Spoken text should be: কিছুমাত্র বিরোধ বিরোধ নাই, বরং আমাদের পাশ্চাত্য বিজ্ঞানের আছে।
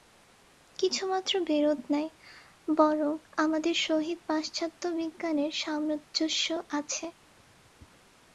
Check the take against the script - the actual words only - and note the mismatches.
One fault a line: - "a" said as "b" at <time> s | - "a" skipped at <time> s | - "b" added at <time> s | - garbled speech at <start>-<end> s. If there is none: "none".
- "বিরোধ" skipped at 1.8 s
- "সহিত" added at 3.9 s
- "সামঞ্জস্য" added at 5.5 s